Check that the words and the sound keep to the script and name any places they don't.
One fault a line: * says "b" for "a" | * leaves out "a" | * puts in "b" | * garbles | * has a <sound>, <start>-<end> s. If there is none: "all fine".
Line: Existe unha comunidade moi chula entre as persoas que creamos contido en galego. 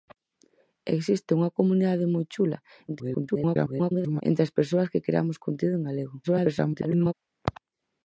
* garbles
* garbles